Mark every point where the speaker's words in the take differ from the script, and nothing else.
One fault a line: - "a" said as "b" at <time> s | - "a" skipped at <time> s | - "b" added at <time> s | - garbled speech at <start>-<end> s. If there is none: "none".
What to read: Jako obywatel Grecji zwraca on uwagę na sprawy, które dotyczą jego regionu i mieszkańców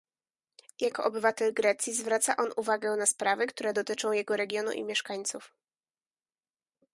none